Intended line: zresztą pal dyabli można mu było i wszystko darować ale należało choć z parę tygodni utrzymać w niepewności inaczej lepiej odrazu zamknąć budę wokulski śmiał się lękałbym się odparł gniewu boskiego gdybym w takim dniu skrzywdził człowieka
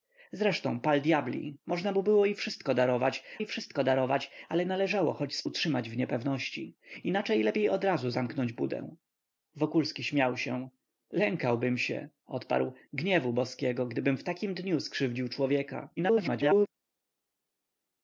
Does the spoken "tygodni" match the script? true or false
false